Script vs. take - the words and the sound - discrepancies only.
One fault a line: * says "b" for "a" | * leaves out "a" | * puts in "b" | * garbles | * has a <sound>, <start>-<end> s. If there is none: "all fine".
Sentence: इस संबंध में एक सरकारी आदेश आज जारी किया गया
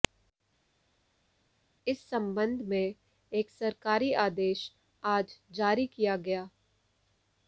all fine